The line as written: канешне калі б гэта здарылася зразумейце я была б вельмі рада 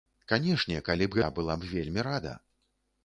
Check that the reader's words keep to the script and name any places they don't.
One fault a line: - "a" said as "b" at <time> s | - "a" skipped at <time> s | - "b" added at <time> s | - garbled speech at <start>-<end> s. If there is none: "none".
- "гэта здарылася зразумейце" skipped at 1.2 s